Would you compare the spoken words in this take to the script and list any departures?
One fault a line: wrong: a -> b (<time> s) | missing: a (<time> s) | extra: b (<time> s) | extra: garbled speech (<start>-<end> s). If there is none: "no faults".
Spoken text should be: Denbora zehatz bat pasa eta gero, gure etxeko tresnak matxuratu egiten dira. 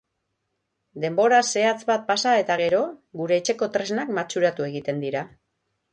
no faults